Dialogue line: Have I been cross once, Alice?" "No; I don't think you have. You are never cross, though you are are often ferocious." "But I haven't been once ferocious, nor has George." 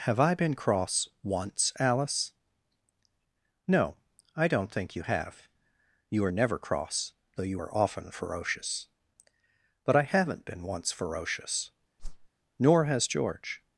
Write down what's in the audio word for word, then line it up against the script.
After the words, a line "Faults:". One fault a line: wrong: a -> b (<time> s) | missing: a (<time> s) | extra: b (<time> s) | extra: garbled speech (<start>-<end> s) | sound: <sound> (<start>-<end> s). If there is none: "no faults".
Have I been cross once, Alice?" "No; I don't think you have. You are never cross, though you are often ferocious." "But I haven't been once ferocious, nor has George."
Faults:
missing: are (7.7 s)
sound: whoosh (12.0-12.3 s)